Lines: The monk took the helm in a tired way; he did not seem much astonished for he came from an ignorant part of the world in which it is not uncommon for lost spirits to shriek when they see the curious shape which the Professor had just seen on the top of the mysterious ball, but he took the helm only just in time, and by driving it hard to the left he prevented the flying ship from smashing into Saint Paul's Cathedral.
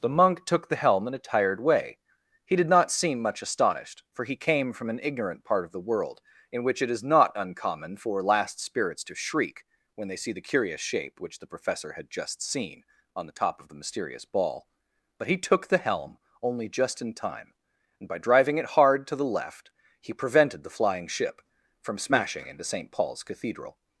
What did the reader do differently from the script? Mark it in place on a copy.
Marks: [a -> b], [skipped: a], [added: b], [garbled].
The monk took the helm in a tired way; he did not seem much astonished for he came from an ignorant part of the world in which it is not uncommon for [lost -> last] spirits to shriek when they see the curious shape which the Professor had just seen on the top of the mysterious ball, but he took the helm only just in time, and by driving it hard to the left he prevented the flying ship from smashing into Saint Paul's Cathedral.